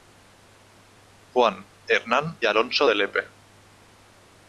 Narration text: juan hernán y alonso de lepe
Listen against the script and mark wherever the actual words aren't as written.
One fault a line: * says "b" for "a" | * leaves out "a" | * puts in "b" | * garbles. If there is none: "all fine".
* leaves out "y"